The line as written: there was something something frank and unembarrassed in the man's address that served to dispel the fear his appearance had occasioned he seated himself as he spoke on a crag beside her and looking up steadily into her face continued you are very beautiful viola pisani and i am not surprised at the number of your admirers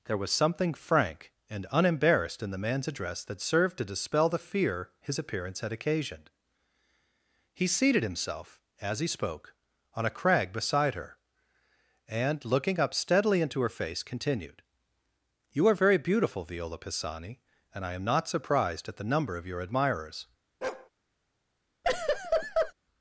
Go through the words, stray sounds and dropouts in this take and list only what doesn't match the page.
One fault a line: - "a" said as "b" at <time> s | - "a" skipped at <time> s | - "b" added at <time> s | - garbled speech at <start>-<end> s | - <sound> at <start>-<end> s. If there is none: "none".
- "something" skipped at 0.7 s
- bark at 20.6-20.9 s
- laugh at 21.8-22.7 s